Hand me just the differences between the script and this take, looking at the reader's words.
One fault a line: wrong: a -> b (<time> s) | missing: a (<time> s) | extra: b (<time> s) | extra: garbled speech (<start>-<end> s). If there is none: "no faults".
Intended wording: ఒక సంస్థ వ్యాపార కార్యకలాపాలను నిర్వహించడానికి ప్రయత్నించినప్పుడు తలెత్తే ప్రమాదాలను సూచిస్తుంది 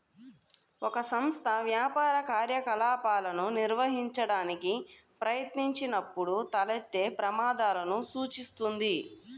no faults